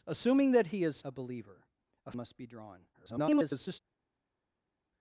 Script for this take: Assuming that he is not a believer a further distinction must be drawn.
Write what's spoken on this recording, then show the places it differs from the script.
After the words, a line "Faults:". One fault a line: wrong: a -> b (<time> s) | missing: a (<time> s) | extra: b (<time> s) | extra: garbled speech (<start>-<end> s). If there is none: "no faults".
Assuming that he is a believer a must be drawn. [garbled]
Faults:
missing: not (1.1 s)
missing: further distinction (2.1 s)
extra: garbled speech (2.9-3.8 s)